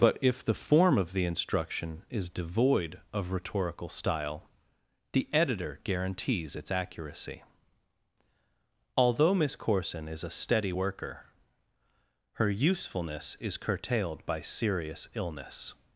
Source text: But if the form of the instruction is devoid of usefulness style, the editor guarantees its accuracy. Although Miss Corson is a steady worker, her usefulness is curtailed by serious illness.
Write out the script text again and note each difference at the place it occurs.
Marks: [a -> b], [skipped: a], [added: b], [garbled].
But if the form of the instruction is devoid of [usefulness -> rhetorical] style, the editor guarantees its accuracy. Although Miss Corson is a steady worker, her usefulness is curtailed by serious illness.